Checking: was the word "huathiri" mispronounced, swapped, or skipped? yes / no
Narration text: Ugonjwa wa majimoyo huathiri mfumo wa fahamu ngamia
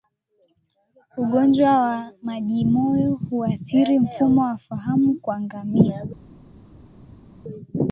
no